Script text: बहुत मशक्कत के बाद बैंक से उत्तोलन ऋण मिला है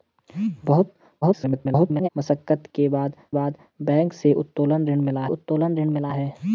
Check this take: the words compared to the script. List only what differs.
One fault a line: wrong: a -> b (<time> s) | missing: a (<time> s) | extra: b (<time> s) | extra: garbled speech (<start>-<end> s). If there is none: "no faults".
extra: garbled speech (1.2-2.1 s)
extra: बाद (3.3 s)
extra: उत्तोलन ऋण मिला (5.3 s)